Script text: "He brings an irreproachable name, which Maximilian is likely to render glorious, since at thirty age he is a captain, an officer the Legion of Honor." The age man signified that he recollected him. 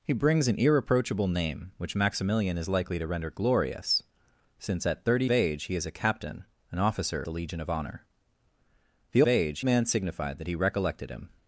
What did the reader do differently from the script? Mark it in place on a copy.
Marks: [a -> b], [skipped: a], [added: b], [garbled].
"He brings an irreproachable name, which Maximilian is likely to render glorious, since at thirty age he is a captain, an officer the Legion of Honor." The age man signified that he recollected him.